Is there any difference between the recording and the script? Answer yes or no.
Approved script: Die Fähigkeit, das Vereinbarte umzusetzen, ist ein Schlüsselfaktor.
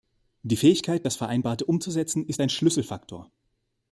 no